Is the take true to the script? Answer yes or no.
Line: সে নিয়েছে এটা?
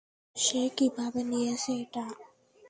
no